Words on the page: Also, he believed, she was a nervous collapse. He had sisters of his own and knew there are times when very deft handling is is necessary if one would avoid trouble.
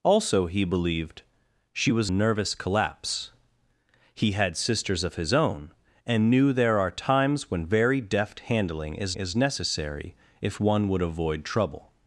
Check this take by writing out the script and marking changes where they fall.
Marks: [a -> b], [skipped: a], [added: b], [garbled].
Also, he believed, she was a nervous collapse. He had sisters of his own and knew there are times when very deft handling is is necessary if one would avoid trouble.